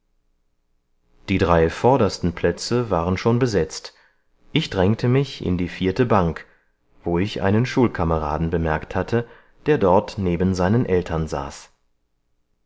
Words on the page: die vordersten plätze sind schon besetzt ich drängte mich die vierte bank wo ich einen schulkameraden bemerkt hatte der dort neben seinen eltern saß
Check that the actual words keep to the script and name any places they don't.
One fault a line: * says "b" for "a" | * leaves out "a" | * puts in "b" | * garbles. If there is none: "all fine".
* puts in "drei"
* says "waren" for "sind"
* puts in "in"